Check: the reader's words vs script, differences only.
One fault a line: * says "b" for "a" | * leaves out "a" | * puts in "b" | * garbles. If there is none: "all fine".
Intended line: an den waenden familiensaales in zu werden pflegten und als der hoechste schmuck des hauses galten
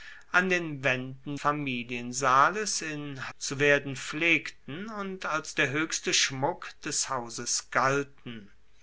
all fine